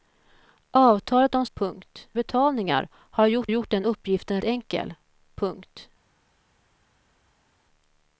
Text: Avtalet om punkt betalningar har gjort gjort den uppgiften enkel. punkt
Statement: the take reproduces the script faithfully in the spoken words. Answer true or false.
true